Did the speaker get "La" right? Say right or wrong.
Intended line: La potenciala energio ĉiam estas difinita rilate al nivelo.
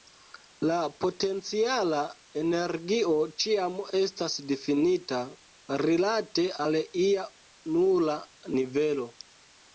right